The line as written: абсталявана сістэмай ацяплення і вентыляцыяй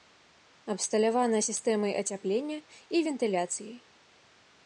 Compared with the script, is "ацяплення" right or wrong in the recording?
right